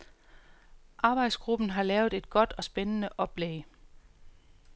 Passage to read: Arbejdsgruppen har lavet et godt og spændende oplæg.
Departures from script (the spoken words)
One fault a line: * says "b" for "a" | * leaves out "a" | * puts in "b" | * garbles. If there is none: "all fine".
all fine